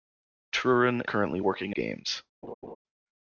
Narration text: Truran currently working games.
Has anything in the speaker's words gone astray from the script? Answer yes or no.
no